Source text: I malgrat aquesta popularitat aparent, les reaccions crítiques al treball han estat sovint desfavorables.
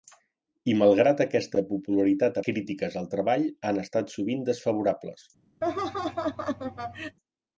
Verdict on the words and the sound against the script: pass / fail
fail